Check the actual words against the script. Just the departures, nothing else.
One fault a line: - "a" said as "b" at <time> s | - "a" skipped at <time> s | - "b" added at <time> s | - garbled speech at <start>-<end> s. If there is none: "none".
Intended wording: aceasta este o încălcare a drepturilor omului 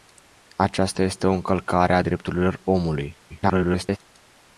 - garbled speech at 3.3-4.0 s